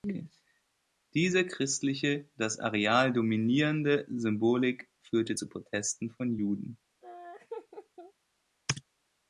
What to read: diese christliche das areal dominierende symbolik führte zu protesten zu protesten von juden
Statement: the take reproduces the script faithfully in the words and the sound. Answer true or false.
false